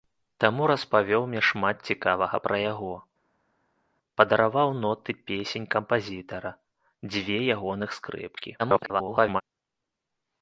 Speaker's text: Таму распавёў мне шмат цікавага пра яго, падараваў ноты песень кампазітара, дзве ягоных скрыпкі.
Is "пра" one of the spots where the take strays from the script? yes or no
no